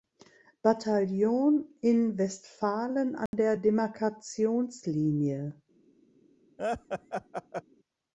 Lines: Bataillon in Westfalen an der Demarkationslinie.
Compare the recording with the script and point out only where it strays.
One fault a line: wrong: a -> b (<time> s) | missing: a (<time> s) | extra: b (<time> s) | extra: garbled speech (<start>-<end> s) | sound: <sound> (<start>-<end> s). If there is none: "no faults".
sound: dropout (3.3-3.3 s)
sound: laugh (6.6-7.6 s)